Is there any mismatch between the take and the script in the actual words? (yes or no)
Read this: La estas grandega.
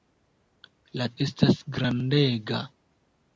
no